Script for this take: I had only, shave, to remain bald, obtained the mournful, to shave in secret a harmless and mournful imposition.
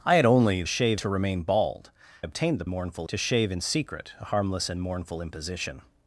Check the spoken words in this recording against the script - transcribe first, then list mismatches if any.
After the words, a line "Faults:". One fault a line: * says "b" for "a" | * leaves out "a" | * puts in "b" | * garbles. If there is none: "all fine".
I had only, shave, to remain bald, obtained the mournful, to shave in secret a harmless and mournful imposition.
Faults:
all fine